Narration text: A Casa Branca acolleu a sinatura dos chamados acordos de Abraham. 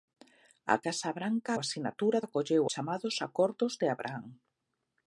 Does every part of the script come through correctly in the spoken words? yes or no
no